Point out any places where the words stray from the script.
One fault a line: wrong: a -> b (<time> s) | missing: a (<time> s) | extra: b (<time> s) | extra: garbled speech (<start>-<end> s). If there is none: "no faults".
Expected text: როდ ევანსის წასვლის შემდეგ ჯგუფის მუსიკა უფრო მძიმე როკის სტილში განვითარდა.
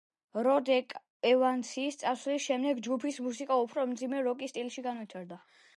no faults